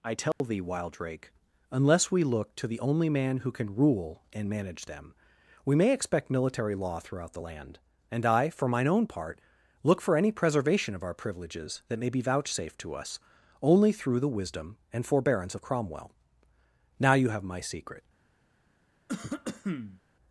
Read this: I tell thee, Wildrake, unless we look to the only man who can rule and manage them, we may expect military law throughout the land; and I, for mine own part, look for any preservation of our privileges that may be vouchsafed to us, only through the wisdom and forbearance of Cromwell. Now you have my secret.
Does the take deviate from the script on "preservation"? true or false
false